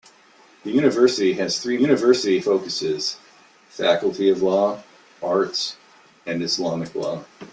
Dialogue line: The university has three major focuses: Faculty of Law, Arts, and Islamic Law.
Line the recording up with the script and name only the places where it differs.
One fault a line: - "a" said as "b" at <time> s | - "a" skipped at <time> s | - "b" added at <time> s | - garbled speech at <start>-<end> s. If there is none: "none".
- "major" said as "university" at 1.8 s